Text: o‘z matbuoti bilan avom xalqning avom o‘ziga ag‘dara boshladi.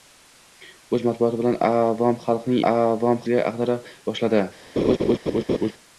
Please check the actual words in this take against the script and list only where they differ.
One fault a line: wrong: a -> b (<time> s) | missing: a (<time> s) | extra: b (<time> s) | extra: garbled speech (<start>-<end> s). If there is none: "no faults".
no faults